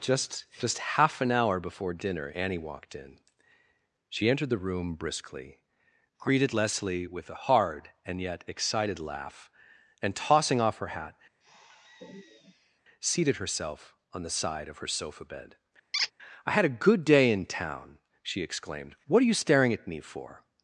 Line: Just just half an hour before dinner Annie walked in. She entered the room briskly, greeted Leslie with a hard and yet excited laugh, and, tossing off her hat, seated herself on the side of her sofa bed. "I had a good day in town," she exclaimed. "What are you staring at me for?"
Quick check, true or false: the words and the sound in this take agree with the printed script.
false